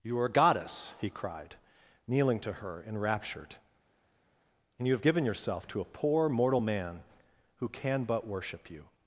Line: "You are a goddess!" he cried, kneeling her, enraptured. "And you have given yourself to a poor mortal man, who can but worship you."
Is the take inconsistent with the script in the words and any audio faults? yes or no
yes